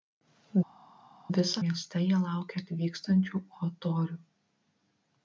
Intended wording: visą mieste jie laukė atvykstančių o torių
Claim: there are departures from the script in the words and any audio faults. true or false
false